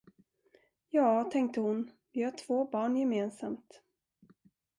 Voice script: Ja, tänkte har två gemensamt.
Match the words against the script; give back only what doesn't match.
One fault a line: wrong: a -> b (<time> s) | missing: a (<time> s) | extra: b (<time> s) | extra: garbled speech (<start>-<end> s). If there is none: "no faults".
extra: hon vi (1.6 s)
extra: barn (2.6 s)